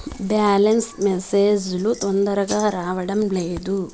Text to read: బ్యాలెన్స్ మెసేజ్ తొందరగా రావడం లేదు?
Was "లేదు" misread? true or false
false